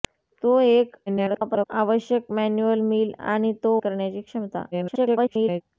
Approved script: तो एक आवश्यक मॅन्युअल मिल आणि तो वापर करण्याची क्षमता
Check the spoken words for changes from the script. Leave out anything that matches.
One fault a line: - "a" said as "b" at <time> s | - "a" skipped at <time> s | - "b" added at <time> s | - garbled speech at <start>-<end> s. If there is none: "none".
- garbled speech at 1.1-1.7 s
- "वापर" skipped at 3.8 s
- garbled speech at 4.7-5.6 s